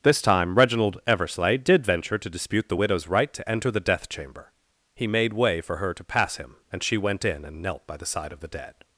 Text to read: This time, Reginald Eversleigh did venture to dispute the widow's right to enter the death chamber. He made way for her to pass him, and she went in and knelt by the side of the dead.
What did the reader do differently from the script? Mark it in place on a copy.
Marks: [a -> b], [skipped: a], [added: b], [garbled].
This time, Reginald Eversleigh did venture to dispute the widow's right to enter the death chamber. He made way for her to pass him, and she went in and knelt by the side of the dead.